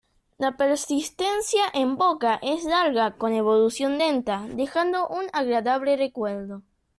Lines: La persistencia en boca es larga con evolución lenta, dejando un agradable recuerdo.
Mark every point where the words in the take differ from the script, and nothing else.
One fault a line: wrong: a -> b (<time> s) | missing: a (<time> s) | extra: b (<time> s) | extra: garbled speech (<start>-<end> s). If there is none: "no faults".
no faults